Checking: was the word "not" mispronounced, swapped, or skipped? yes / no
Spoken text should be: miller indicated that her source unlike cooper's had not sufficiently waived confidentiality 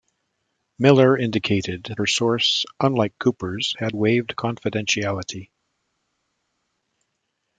yes